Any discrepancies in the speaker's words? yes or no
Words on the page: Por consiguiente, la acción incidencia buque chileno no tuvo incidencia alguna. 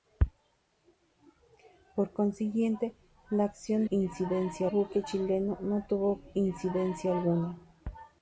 no